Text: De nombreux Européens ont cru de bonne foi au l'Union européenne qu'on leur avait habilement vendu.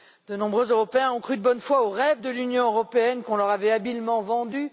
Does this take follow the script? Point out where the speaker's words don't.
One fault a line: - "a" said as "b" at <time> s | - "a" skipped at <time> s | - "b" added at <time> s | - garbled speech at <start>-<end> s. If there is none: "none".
- "rêve de" added at 1.9 s